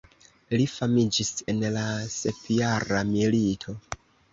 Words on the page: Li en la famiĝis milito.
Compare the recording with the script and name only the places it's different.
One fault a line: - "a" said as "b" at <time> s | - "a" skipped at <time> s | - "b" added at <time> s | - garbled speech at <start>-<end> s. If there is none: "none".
- "famiĝis" added at 0.8 s
- "famiĝis" said as "sepjara" at 2.2 s